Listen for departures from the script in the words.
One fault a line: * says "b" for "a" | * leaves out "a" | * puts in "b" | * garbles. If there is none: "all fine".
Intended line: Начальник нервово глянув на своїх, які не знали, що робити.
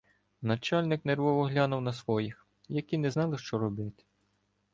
all fine